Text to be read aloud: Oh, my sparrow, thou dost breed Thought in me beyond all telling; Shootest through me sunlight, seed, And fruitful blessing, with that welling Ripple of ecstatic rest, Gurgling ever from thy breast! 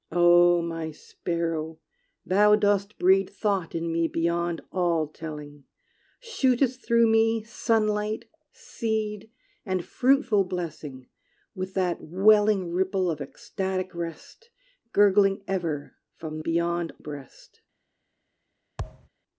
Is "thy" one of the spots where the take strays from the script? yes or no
yes